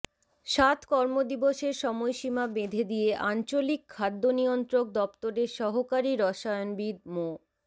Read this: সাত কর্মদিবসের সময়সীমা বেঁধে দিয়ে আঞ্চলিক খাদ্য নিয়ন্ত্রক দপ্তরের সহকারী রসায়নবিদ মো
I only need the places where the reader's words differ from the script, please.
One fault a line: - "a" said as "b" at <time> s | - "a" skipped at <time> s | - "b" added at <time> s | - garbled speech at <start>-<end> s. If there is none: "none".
none